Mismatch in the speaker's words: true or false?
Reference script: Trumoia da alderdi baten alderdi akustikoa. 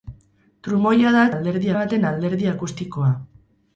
false